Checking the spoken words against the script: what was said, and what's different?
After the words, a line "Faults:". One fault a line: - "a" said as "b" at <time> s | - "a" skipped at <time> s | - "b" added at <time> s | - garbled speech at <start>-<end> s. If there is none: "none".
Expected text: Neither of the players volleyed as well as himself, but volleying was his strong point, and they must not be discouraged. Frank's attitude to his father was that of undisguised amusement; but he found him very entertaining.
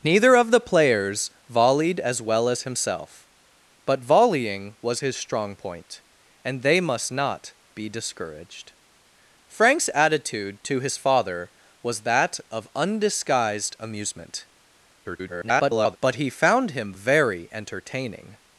Neither of the players volleyed as well as himself, but volleying was his strong point, and they must not be discouraged. Frank's attitude to his father was that of undisguised amusement; [garbled] but he found him very entertaining.
Faults:
- garbled speech at 15.0-16.0 s